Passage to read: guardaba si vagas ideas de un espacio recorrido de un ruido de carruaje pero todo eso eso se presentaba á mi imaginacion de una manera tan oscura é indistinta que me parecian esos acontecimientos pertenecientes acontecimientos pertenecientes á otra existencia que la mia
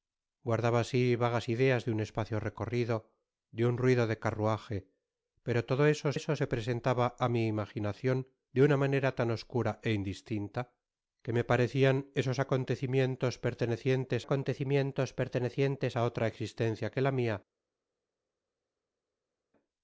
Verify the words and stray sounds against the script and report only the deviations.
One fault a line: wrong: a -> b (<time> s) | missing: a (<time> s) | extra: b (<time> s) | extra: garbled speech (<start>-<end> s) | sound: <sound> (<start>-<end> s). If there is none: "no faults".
no faults